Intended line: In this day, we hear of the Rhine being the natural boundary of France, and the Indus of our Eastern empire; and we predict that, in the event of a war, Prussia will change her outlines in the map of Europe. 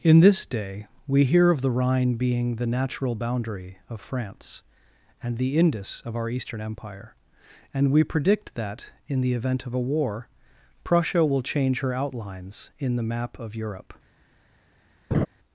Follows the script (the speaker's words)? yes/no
yes